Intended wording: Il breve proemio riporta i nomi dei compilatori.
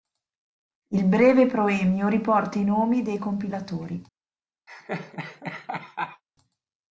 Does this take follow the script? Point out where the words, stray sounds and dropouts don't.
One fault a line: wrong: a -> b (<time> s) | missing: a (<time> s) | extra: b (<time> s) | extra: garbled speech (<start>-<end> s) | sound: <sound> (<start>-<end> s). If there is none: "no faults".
sound: laugh (4.7-6.2 s)